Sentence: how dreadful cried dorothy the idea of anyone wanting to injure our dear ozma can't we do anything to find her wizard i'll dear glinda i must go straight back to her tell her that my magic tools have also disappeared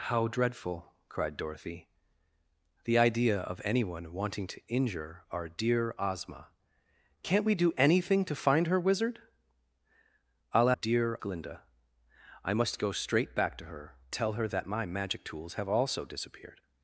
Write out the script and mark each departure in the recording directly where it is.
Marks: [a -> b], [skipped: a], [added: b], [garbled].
how dreadful cried dorothy the idea of anyone wanting to injure our dear ozma can't we do anything to find her wizard i'll dear glinda i must go straight back to her tell her that my magic tools have also disappeared